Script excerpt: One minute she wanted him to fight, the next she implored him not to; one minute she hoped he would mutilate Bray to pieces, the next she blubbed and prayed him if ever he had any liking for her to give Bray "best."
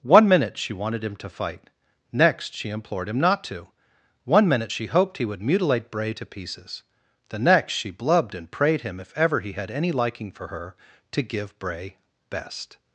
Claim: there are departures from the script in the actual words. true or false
true